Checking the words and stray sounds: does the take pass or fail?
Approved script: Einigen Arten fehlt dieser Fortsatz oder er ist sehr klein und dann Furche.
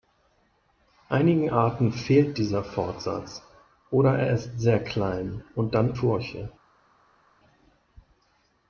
pass